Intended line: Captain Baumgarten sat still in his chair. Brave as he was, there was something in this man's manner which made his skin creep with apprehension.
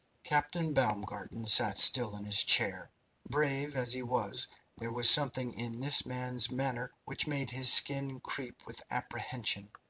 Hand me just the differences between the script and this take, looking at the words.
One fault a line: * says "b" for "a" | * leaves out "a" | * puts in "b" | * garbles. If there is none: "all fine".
all fine